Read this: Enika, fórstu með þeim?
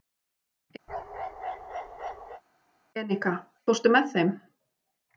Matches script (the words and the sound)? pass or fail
fail